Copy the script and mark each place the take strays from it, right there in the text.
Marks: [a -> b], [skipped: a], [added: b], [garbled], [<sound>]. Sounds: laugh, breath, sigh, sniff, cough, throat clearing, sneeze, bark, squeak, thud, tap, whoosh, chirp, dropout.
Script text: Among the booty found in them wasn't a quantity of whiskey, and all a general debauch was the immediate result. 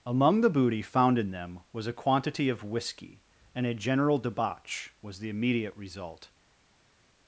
Among the booty found in them [wasn't -> was] a quantity of whiskey, and [skipped: all] a general debauch was the immediate result.